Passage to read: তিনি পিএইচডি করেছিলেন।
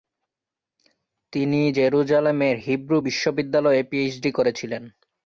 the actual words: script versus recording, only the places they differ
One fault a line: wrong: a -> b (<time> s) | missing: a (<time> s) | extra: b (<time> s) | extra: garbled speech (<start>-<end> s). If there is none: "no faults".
extra: জেরুজালেমের হিব্রু বিশ্ববিদ্যালয়ে (1.7 s)